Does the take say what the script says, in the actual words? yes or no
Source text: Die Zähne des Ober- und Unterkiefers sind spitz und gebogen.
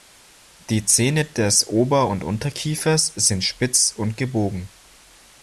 yes